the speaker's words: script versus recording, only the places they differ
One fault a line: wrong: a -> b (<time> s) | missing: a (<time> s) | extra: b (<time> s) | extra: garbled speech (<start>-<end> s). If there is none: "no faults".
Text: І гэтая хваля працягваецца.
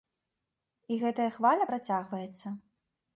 no faults